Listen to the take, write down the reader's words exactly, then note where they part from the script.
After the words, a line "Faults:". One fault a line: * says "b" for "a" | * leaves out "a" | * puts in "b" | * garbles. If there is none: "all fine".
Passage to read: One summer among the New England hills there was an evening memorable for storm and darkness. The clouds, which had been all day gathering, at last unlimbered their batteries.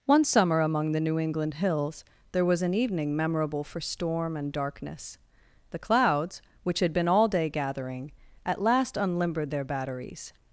One summer among the New England hills there was an evening memorable for storm and darkness. The clouds, which had been all day gathering, at last unlimbered their batteries.
Faults:
all fine